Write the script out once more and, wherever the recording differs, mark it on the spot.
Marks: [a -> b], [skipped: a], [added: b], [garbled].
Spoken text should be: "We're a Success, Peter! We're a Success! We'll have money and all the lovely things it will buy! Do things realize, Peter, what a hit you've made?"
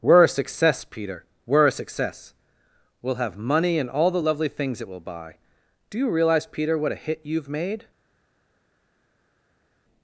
"We're a Success, Peter! We're a Success! We'll have money and all the lovely things it will buy! Do [things -> you] realize, Peter, what a hit you've made?"